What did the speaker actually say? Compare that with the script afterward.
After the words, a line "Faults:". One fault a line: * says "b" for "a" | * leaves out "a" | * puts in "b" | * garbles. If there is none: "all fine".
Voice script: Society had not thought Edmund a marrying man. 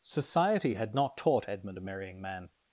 Society had not taught Edmund a marrying man.
Faults:
* says "taught" for "thought"